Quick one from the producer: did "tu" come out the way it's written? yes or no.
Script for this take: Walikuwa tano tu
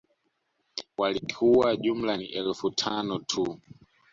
yes